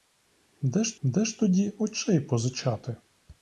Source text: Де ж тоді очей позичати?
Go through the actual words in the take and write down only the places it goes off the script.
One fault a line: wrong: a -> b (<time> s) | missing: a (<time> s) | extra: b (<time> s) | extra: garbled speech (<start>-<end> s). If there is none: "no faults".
extra: де ж (1.0 s)